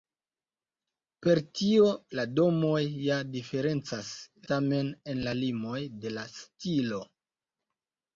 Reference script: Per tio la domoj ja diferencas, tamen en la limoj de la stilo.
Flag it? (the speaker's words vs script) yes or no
no